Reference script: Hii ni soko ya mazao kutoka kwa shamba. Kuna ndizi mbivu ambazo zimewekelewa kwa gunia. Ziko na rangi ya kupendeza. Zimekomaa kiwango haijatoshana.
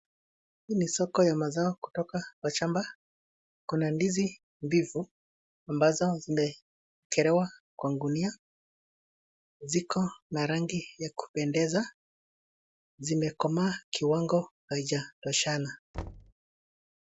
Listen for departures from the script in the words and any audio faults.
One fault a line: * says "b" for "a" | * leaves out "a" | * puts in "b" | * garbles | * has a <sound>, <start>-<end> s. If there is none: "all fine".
* has a thud, 15.9-16.3 s